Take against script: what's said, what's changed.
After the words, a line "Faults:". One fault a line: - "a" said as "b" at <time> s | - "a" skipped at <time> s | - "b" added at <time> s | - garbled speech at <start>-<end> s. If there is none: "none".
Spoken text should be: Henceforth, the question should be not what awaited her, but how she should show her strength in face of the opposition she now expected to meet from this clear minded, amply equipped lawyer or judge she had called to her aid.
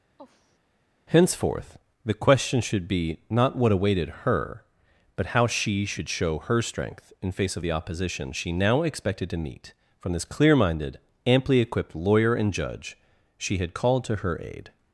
Henceforth, the question should be not what awaited her, but how she should show her strength in face of the opposition she now expected to meet from this clear minded, amply equipped lawyer and judge she had called to her aid.
Faults:
- "or" said as "and" at 12.3 s